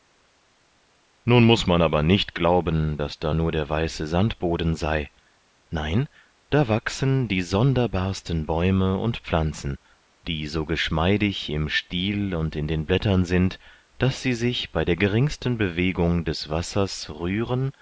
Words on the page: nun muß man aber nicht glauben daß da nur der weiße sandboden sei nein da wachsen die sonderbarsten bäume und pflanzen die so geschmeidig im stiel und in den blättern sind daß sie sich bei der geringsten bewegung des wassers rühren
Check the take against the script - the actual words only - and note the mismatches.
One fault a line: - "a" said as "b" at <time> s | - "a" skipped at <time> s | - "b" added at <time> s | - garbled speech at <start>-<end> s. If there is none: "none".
none